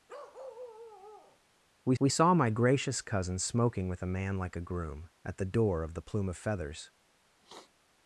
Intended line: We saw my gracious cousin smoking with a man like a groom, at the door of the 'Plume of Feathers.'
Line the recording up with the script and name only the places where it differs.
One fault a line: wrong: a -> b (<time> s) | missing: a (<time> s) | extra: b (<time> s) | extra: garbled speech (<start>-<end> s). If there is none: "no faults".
extra: we (2.0 s)